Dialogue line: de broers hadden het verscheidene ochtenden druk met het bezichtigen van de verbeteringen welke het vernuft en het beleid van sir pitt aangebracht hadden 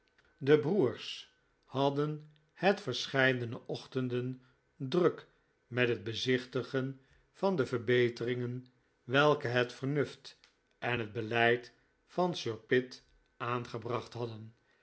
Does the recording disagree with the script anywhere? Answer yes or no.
no